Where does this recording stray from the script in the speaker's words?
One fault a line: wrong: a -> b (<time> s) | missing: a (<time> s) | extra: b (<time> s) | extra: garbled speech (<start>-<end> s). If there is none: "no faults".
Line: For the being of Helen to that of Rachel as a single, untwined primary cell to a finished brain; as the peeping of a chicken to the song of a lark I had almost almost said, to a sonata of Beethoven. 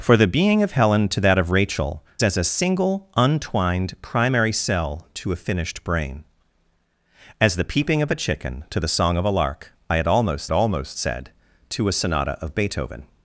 no faults